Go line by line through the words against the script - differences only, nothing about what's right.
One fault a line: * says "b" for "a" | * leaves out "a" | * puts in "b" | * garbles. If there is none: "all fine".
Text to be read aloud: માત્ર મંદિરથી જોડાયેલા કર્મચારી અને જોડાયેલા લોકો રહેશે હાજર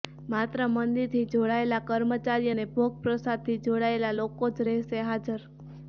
* puts in "ભોગ પ્રસાદથી"
* puts in "જ"